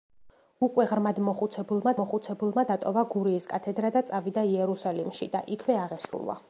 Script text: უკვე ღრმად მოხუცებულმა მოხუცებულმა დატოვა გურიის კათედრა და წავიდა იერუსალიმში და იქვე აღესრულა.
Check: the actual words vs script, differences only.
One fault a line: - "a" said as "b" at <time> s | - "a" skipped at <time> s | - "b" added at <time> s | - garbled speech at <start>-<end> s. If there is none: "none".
none